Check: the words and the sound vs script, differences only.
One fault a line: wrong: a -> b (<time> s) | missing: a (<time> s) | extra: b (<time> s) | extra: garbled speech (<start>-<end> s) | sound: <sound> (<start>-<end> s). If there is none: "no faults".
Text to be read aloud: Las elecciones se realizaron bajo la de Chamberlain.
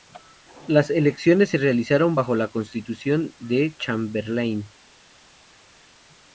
extra: constitución (2.5 s)